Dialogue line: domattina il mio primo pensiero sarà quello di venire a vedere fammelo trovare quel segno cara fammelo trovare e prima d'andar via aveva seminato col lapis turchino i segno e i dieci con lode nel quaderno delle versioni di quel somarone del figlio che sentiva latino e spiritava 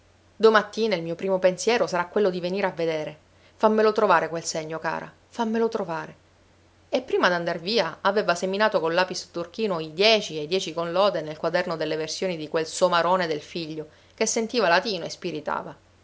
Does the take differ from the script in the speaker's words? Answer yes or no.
yes